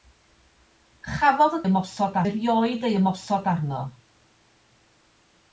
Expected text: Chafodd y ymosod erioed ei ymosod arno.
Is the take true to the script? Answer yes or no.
yes